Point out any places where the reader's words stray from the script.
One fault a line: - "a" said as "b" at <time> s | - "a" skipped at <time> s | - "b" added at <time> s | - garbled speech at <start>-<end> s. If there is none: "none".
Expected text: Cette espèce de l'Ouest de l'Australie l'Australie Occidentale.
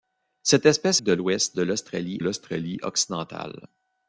none